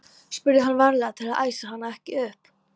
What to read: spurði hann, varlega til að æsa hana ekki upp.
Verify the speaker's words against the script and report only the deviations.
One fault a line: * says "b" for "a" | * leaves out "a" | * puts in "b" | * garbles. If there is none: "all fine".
all fine